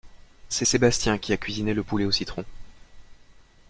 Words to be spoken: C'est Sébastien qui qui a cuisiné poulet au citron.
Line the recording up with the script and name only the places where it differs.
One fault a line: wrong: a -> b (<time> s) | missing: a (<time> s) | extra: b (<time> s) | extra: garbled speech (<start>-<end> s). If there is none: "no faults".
missing: qui (1.3 s)
extra: le (1.7 s)